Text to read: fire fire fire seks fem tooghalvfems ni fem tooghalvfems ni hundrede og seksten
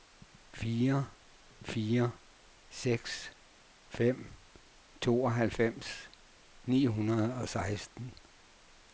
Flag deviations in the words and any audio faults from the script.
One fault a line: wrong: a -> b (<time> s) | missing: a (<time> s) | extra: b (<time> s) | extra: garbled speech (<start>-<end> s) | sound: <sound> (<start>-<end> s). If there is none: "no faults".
missing: fire (2.1 s)
missing: fem tooghalvfems ni (6.8 s)